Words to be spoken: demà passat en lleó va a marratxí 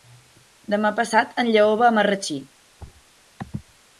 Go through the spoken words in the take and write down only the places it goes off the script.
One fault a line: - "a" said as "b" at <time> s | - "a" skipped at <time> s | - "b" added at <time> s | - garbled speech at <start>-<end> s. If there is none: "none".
none